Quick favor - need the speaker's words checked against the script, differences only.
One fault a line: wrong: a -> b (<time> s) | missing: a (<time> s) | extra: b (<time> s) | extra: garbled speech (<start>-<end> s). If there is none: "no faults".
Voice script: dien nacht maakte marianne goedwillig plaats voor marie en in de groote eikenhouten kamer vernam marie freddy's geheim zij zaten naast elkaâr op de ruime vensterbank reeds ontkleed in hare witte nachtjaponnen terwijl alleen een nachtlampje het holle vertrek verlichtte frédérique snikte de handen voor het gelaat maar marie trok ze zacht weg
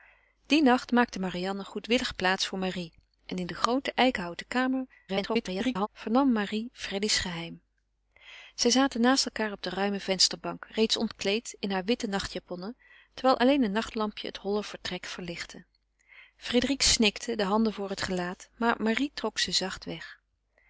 extra: garbled speech (5.1-5.9 s)